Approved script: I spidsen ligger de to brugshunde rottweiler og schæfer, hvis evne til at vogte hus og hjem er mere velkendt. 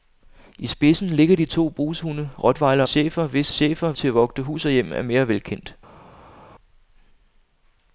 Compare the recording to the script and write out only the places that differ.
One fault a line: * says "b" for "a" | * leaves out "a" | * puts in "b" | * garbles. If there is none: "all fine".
* leaves out "og"
* says "schæfer" for "evne"